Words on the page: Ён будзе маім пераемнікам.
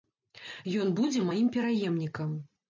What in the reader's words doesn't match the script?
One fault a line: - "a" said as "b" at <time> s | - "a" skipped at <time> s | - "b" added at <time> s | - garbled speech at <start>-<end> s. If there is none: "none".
none